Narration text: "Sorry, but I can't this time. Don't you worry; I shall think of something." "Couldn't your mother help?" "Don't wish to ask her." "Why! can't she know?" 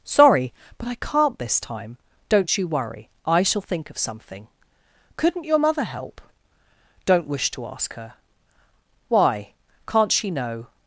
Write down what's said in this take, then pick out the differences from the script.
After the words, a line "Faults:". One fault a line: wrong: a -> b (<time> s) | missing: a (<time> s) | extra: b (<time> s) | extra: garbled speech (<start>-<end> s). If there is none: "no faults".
"Sorry, but I can't this time. Don't you worry; I shall think of something." "Couldn't your mother help?" "Don't wish to ask her." "Why! can't she know?"
Faults:
no faults